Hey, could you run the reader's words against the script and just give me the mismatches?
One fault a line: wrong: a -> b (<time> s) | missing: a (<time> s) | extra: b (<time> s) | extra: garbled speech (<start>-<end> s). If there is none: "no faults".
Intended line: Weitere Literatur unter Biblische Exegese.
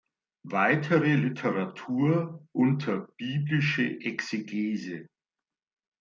no faults